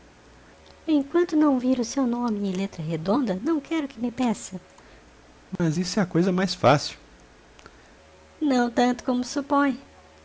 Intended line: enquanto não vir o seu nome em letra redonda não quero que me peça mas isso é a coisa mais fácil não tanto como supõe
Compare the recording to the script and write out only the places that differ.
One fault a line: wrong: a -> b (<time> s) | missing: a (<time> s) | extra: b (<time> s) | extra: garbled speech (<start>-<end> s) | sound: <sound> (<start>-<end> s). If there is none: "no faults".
sound: dropout (5.6-5.6 s)